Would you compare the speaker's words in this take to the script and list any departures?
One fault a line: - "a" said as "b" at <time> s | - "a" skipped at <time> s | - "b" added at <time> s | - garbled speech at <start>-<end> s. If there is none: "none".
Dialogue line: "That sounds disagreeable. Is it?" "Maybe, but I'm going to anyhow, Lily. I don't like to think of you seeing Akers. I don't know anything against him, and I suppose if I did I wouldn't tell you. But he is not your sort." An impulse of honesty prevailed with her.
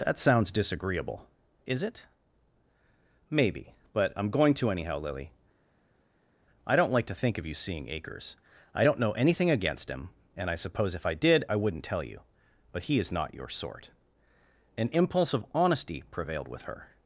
none